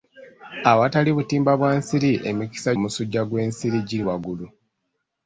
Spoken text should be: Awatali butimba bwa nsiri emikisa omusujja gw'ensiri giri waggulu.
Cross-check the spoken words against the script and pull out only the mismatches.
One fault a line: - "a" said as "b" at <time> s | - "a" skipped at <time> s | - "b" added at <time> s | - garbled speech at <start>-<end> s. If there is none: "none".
none